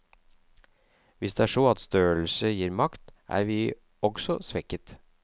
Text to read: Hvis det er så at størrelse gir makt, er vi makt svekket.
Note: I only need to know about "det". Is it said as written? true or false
true